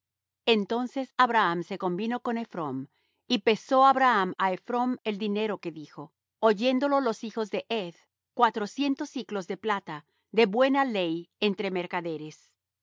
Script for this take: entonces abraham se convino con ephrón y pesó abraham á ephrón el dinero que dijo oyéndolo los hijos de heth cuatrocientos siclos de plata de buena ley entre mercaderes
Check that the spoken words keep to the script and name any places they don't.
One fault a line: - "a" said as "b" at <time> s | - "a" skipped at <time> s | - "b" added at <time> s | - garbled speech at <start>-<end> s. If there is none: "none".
none